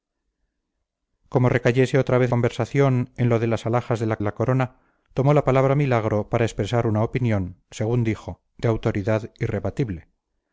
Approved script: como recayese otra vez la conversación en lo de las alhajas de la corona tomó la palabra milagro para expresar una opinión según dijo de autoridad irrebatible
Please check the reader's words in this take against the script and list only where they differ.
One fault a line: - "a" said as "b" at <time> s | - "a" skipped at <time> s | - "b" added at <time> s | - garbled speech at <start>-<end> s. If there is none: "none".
- "la" skipped at 2.3 s
- "la" added at 4.2 s